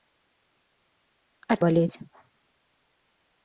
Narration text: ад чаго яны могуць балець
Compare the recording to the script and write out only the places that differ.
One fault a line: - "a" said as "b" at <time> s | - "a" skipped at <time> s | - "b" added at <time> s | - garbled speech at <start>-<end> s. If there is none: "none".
- "чаго яны могуць" skipped at 1.6 s